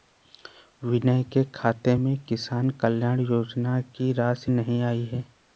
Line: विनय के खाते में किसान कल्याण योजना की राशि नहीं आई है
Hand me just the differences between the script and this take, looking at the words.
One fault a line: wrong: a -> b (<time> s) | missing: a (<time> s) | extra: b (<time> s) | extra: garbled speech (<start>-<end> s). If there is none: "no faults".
no faults